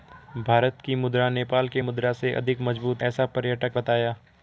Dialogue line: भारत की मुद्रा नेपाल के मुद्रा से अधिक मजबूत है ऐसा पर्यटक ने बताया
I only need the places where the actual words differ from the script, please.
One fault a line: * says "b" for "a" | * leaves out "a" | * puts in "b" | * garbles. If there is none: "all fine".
* leaves out "है"
* leaves out "ने"